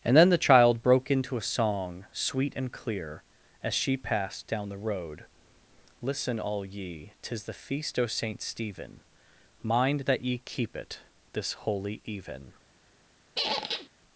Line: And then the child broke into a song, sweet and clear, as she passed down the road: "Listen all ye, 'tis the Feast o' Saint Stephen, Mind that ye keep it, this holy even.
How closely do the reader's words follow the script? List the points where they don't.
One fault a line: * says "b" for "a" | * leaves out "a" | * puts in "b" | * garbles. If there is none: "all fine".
all fine